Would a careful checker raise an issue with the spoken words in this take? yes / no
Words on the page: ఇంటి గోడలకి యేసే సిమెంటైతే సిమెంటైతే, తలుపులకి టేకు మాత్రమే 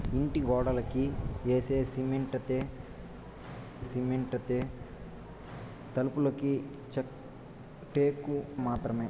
no